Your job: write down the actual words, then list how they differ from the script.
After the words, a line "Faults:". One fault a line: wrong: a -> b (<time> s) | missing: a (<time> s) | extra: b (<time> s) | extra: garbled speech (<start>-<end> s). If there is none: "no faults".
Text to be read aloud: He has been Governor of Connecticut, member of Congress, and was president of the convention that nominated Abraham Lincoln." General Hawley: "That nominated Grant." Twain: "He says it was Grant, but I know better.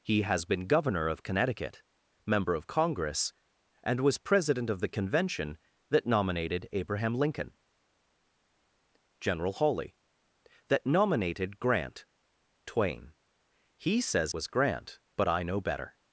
He has been Governor of Connecticut, member of Congress, and was president of the convention that nominated Abraham Lincoln." General Hawley: "That nominated Grant." Twain: "He says was Grant, but I know better.
Faults:
missing: it (14.3 s)